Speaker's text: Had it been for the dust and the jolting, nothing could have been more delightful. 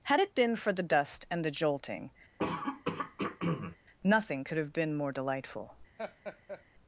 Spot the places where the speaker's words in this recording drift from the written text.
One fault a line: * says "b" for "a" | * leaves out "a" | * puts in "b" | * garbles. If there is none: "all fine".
all fine